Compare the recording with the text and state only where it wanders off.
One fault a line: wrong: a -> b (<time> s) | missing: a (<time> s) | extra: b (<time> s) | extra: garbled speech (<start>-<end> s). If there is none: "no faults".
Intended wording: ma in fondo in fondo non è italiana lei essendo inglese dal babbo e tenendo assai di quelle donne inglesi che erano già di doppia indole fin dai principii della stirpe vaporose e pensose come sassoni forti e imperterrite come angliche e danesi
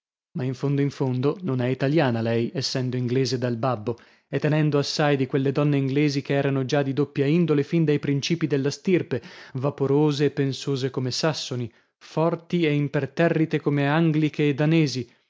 no faults